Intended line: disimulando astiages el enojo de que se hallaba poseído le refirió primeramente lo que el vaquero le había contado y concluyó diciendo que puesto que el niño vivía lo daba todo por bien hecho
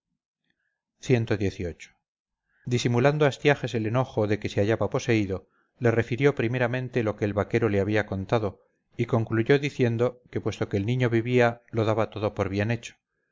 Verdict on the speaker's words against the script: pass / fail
pass